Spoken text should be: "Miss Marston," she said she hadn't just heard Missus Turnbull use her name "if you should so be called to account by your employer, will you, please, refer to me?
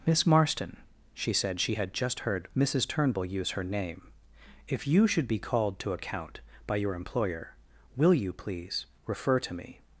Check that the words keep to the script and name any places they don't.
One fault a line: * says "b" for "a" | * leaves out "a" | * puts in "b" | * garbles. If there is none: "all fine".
* says "had" for "hadn't"
* leaves out "so"